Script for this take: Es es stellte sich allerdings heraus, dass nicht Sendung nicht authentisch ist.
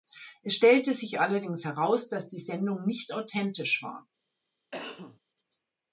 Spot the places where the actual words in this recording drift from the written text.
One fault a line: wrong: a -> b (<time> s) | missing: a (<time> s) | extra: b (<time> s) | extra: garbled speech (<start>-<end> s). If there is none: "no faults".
missing: es (0.6 s)
wrong: nicht -> die (2.3 s)
wrong: ist -> war (3.8 s)